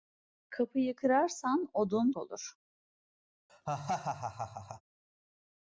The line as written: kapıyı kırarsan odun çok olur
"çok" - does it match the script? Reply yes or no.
no